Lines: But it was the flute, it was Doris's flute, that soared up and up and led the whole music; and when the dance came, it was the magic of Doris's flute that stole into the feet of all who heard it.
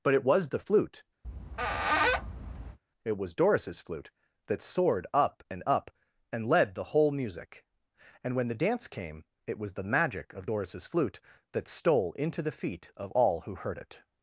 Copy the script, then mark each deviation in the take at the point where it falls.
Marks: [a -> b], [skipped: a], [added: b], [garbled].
But it was the flute, it was Doris's flute, that soared up and up and led the whole music; and when the dance came, it was the magic of Doris's flute that stole into the feet of all who heard it.